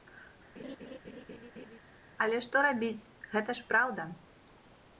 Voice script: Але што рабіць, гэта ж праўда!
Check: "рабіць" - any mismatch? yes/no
no